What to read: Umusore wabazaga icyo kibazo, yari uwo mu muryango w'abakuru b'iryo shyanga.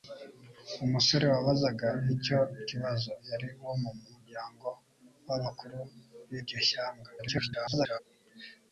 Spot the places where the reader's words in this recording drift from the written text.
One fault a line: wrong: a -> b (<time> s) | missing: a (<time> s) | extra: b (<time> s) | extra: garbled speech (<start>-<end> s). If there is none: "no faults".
extra: garbled speech (7.2-8.0 s)